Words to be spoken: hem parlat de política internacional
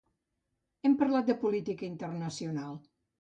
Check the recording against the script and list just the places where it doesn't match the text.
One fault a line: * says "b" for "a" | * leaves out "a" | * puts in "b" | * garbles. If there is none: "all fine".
all fine